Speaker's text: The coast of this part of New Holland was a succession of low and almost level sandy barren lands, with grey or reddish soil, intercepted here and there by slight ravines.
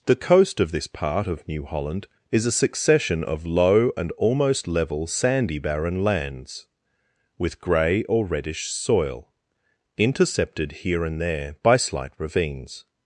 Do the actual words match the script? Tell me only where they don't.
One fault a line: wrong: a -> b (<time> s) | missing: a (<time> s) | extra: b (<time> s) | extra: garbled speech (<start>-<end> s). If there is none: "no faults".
wrong: was -> is (2.3 s)